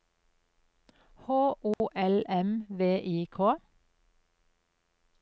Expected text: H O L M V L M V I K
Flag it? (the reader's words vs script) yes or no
yes